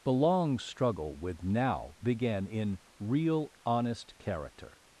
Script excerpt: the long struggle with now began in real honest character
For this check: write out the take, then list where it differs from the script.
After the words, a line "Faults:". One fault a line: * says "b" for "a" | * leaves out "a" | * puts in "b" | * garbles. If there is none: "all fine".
the long struggle with now began in real honest character
Faults:
all fine